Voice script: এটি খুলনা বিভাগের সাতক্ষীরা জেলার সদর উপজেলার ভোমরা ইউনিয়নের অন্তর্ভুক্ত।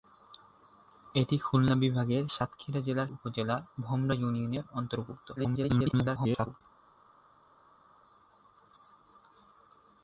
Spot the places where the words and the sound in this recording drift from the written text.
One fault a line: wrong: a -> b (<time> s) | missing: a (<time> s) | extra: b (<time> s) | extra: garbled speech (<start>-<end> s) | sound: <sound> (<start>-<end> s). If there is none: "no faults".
missing: সদর (3.1 s)
extra: garbled speech (5.4-6.6 s)